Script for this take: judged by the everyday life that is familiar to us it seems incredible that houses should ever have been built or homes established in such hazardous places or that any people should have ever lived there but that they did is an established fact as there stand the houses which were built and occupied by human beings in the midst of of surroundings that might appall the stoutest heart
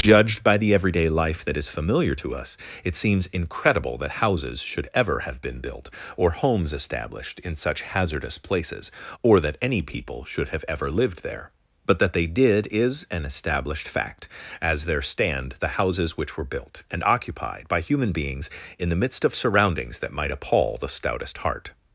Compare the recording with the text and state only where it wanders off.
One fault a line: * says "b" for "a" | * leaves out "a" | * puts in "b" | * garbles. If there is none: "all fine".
* leaves out "of"